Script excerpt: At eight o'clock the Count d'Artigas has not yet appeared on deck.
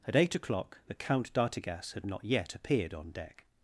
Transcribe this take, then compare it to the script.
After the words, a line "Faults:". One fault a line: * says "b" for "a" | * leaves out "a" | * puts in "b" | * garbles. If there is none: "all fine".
At eight o'clock the Count d'Artigas had not yet appeared on deck.
Faults:
* says "had" for "has"